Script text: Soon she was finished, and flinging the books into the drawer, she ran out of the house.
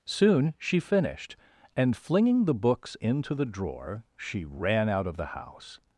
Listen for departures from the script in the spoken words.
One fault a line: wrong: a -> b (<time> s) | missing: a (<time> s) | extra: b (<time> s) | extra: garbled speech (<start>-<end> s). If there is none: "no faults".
missing: was (0.8 s)